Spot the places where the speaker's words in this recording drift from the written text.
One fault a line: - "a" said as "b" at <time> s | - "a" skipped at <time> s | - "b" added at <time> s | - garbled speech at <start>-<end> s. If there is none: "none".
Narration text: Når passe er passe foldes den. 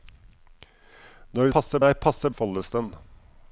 none